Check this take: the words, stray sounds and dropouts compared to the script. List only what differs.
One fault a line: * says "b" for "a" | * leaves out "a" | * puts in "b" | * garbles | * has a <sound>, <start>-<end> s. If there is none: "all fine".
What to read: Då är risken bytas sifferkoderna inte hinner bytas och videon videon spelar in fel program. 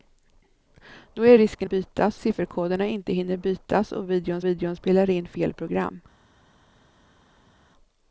all fine